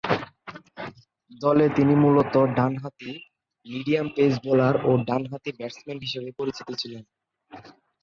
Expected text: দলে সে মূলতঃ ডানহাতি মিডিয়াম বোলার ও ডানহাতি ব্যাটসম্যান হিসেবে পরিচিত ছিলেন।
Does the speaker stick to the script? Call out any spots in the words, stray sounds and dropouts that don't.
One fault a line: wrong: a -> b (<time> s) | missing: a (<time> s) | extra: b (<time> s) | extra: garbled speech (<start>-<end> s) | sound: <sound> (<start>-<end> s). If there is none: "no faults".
wrong: সে -> তিনি (1.8 s)
extra: পেস (4.2 s)